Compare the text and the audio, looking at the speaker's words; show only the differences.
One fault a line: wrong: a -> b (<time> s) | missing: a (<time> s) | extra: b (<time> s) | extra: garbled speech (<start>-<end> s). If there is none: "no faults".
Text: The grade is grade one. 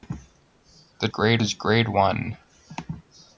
no faults